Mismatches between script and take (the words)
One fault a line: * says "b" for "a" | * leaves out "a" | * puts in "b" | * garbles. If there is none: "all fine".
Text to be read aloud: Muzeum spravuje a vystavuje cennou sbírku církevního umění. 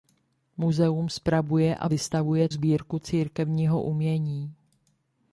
* leaves out "cennou"